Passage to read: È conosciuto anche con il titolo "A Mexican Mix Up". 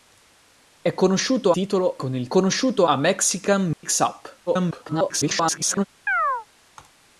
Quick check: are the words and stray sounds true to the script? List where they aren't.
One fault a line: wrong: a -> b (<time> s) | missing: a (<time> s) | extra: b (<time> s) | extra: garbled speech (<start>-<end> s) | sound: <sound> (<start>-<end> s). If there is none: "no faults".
wrong: anche -> titolo (1.5 s)
wrong: titolo -> conosciuto (2.3 s)
sound: dropout (3.7-3.8 s)
extra: garbled speech (4.5-5.9 s)
sound: chirp (6.1-6.5 s)